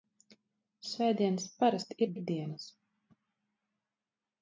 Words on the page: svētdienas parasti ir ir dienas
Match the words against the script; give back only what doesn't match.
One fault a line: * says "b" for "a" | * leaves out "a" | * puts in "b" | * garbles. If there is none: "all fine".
all fine